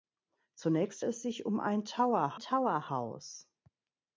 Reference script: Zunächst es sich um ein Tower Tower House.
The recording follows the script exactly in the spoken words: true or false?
true